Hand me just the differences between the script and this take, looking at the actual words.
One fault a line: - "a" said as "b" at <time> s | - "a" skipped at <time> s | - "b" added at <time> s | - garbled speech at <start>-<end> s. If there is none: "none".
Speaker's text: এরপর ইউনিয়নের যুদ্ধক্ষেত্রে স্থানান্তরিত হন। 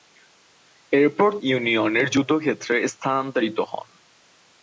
none